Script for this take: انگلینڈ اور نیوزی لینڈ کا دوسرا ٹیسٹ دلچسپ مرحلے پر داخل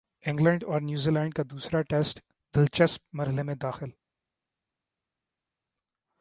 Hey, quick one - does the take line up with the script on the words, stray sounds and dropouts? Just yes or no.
no